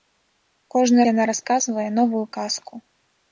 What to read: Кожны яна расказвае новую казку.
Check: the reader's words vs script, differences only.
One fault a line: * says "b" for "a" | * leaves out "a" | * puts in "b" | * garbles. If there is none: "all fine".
all fine